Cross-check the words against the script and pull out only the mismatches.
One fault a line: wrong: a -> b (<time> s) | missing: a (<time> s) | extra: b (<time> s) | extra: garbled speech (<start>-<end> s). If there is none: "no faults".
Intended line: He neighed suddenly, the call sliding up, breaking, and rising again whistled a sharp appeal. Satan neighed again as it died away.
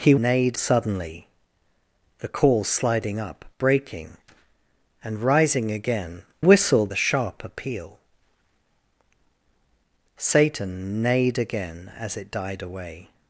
no faults